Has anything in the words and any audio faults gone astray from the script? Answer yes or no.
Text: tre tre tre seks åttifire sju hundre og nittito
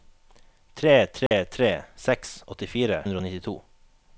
yes